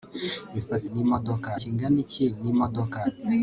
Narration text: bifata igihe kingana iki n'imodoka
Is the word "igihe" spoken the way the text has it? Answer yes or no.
no